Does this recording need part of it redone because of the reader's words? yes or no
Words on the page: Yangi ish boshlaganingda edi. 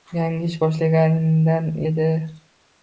no